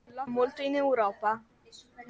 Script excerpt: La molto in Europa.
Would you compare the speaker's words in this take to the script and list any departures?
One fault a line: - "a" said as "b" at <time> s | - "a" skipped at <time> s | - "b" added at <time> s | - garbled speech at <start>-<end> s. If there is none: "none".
none